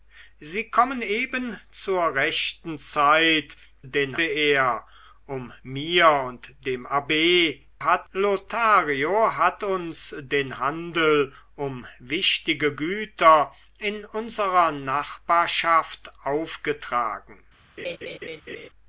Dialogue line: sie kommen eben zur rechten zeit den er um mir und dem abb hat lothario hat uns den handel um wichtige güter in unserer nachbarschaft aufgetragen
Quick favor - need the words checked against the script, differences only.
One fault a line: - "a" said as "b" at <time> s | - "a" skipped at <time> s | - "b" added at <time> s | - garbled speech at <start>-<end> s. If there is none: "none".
none